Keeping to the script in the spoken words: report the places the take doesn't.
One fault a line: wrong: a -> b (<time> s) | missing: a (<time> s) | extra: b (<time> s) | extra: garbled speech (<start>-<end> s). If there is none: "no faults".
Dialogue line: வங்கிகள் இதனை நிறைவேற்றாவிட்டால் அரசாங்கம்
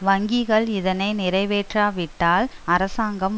no faults